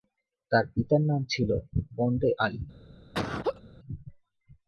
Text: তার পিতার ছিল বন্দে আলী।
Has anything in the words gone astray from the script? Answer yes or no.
yes